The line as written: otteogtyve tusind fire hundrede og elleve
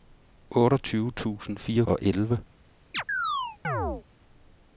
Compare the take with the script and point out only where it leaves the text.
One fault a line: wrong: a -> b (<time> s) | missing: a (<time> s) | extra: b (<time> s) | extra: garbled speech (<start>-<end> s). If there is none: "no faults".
missing: hundrede (1.8 s)